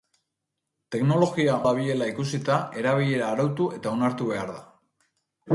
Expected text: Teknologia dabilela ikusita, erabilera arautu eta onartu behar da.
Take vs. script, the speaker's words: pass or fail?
pass